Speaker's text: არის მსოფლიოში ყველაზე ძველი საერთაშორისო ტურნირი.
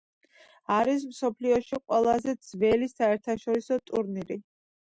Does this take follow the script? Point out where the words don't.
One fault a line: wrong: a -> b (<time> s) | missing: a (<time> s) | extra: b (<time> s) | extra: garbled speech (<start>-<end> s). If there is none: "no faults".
no faults